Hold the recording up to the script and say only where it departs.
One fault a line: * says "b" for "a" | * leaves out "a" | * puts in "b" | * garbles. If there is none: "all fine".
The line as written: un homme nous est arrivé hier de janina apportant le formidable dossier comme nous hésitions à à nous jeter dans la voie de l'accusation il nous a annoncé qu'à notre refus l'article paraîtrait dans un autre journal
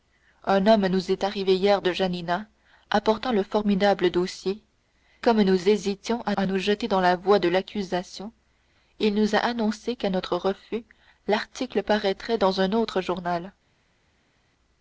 all fine